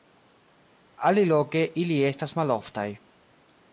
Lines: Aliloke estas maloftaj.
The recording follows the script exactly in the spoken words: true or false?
false